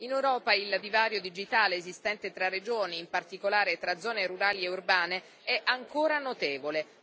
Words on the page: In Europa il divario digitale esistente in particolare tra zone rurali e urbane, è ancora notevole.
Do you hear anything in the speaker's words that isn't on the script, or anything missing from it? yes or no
yes